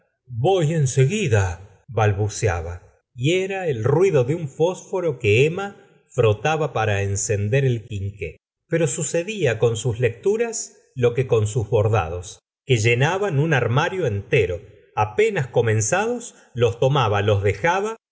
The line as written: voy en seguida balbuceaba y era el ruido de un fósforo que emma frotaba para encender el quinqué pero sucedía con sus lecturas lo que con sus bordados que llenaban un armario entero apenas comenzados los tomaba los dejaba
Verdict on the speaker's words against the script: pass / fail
pass